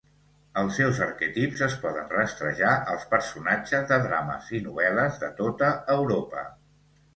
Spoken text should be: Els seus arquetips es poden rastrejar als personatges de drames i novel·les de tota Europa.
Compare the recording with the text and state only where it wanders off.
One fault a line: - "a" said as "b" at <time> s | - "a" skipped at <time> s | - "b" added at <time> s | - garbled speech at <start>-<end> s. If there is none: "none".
none